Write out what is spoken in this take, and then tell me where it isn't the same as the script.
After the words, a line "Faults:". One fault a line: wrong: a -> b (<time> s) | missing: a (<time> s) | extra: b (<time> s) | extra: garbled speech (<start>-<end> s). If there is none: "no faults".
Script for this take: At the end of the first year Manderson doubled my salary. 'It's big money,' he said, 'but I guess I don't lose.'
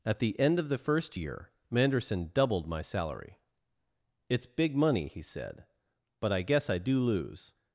At the end of the first year Manderson doubled my salary. 'It's big money,' he said, 'but I guess I do lose.'
Faults:
wrong: don't -> do (6.8 s)